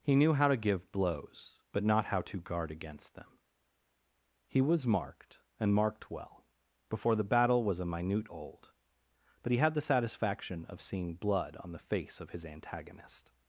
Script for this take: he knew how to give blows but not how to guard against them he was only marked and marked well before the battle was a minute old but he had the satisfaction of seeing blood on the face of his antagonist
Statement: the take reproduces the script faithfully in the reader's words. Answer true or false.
false